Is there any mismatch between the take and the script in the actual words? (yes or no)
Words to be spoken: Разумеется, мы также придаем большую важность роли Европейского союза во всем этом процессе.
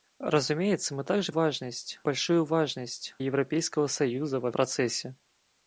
yes